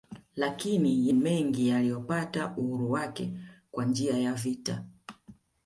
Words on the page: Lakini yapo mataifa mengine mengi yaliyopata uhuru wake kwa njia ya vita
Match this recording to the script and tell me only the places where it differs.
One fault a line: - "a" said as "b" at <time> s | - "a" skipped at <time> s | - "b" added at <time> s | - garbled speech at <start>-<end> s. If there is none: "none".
- "yapo mataifa mengine" skipped at 1.1 s